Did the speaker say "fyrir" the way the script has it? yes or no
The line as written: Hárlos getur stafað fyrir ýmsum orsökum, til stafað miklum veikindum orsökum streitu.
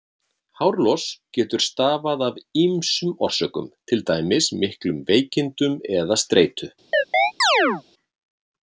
no